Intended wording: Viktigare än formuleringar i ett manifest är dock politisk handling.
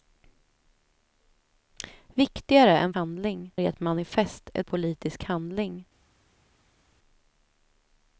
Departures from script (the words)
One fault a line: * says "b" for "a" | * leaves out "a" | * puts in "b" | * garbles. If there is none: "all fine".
* says "handling" for "formuleringar"
* leaves out "dock"